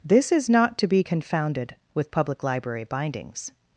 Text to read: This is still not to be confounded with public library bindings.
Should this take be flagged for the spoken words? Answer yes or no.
yes